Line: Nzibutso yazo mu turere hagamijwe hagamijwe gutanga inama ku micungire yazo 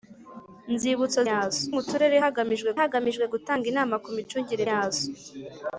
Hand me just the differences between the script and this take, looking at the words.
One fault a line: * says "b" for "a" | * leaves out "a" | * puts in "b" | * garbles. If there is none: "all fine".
all fine